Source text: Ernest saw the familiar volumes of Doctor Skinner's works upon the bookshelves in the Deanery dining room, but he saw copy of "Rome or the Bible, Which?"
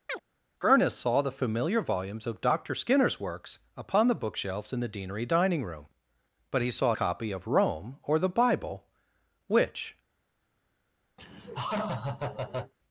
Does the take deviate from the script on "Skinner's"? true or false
false